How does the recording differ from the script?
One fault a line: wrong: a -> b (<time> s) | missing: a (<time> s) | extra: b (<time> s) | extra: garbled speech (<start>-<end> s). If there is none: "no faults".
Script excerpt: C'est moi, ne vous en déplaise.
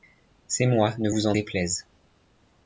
no faults